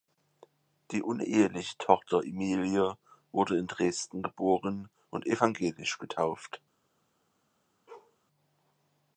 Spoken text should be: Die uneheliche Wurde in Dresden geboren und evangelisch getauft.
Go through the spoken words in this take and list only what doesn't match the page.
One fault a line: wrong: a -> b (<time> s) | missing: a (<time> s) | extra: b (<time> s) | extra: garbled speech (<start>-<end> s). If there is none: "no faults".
extra: Tochter Emilie (1.8 s)